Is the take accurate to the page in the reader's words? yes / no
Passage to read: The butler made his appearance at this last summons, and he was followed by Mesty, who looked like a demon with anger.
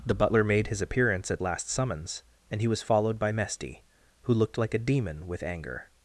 no